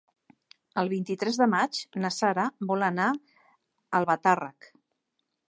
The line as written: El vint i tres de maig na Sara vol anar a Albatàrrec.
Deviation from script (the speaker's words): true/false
false